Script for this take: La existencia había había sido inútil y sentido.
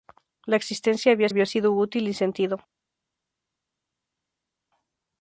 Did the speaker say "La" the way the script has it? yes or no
yes